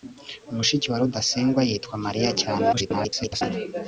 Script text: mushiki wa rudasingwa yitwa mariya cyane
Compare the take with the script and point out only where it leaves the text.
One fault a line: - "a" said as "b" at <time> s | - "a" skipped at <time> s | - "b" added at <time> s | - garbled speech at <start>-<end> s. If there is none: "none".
- garbled speech at 2.7-3.4 s